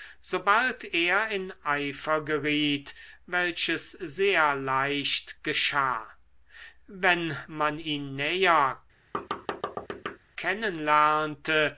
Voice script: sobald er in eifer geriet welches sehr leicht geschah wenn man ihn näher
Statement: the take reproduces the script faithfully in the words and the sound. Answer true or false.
false